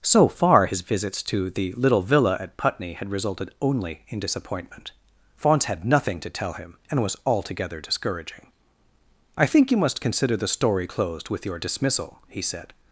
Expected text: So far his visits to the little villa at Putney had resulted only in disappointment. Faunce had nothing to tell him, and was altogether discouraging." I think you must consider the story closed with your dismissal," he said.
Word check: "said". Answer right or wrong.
right